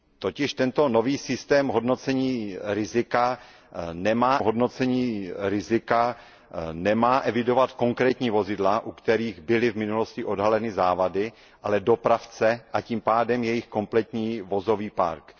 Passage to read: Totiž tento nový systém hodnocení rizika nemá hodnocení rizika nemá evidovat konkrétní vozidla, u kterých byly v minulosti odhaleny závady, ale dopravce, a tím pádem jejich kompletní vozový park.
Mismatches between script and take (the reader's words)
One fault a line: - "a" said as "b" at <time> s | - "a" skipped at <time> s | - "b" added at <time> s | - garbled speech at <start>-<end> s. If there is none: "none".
none